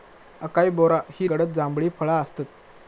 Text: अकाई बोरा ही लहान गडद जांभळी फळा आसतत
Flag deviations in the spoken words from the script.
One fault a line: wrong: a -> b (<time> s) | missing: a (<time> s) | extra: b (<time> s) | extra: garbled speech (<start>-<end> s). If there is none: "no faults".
missing: लहान (1.3 s)